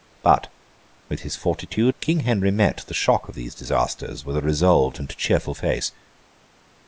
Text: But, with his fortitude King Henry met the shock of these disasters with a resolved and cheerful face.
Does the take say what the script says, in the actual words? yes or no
yes